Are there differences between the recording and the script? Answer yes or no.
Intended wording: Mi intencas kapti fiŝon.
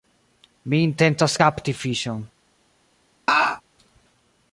no